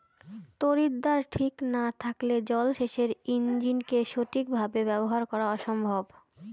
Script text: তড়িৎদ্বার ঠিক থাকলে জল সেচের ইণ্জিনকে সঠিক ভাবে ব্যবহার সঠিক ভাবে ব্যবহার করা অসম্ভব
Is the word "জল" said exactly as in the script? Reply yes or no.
yes